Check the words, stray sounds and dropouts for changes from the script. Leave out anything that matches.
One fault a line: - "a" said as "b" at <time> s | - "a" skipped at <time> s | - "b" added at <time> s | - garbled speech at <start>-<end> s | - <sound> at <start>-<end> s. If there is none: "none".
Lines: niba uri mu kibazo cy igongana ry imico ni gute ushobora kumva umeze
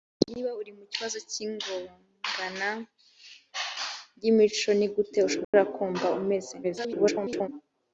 - dropout at 5.4-5.5 s
- garbled speech at 6.6-7.5 s